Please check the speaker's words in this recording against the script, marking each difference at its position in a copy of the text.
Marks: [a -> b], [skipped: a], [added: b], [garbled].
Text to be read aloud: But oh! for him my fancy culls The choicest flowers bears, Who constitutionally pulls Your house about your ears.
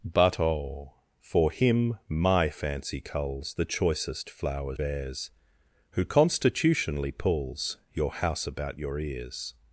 But oh! for him my fancy culls The choicest flowers bears, Who constitutionally pulls Your house about your ears.